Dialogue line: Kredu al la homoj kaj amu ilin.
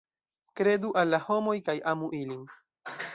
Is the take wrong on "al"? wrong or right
right